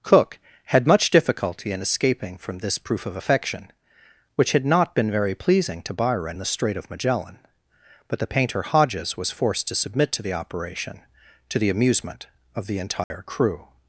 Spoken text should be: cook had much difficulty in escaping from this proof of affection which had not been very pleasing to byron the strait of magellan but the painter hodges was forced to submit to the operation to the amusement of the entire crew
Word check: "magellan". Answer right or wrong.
right